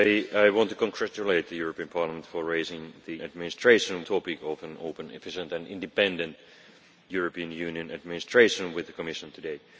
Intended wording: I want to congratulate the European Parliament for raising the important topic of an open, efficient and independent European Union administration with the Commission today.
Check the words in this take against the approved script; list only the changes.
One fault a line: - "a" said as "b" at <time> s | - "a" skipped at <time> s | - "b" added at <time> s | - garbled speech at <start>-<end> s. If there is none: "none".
- "important" said as "administration" at 3.2 s